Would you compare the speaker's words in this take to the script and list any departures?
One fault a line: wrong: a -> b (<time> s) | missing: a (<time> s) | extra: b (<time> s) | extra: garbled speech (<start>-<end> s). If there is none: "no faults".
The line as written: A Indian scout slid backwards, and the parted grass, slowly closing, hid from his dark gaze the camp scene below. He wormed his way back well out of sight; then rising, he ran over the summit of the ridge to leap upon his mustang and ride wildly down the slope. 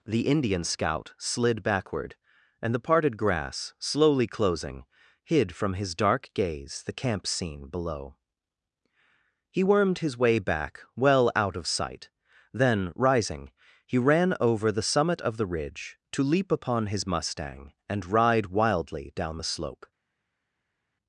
wrong: A -> The (0.1 s)
wrong: backwards -> backward (1.6 s)